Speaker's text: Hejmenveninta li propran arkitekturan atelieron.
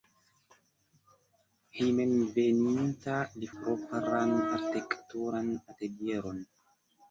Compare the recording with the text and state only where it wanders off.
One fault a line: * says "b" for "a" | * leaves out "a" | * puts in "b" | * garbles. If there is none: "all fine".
all fine